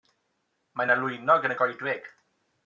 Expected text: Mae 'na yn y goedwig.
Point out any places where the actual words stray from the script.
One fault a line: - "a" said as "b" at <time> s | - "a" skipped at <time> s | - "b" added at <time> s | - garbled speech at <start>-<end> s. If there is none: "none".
- "lwynog" added at 1.0 s